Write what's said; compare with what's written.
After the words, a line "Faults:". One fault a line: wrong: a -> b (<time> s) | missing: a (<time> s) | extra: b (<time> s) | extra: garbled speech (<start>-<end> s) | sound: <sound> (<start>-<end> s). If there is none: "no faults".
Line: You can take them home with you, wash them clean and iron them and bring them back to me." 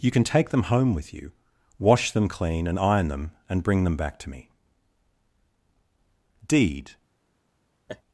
You can take them home with you, wash them clean and iron them and bring them back to me." "'Deed
Faults:
extra: Deed (6.5 s)
sound: laugh (7.9-8.0 s)